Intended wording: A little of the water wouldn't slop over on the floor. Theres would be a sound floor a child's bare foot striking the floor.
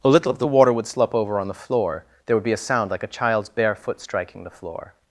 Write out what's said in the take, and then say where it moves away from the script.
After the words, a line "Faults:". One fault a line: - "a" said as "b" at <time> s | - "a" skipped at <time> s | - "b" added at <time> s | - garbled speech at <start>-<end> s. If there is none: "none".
A little of the water would slop over on the floor. There would be a sound like a child's bare foot striking the floor.
Faults:
- "wouldn't" said as "would" at 0.7 s
- "Theres" said as "There" at 2.2 s
- "floor" said as "like" at 2.9 s